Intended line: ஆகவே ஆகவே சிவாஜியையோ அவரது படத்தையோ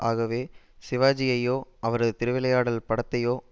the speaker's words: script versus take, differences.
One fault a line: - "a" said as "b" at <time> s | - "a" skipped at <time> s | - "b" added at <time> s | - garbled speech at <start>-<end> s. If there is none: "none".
- "ஆகவே" skipped at 0.4 s
- "திருவிளையாடல்" added at 2.2 s